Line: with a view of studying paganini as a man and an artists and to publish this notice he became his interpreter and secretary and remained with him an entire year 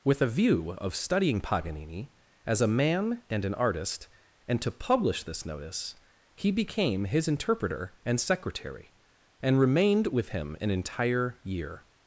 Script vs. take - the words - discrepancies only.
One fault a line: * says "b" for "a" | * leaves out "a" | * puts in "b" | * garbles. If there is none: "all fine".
* says "artist" for "artists"